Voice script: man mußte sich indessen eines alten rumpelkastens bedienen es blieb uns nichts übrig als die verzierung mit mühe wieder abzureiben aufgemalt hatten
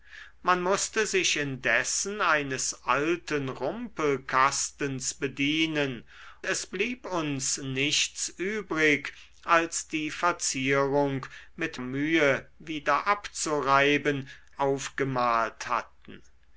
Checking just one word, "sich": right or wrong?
right